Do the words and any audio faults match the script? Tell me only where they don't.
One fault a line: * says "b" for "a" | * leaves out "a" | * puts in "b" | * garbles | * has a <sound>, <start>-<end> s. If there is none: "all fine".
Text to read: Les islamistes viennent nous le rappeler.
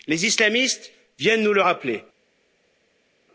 all fine